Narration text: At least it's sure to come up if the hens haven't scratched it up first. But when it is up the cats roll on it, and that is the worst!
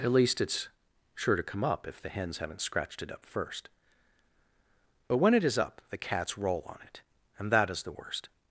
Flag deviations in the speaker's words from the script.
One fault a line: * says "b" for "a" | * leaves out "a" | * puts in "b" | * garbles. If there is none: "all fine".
all fine